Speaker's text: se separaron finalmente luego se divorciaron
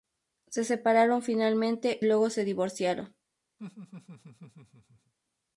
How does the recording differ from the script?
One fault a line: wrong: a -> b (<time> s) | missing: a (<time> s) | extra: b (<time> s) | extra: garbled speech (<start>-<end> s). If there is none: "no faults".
no faults